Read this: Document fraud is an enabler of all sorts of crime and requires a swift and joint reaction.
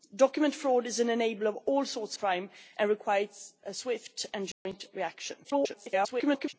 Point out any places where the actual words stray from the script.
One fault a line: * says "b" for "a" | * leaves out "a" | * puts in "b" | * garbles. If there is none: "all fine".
* leaves out "of"
* garbles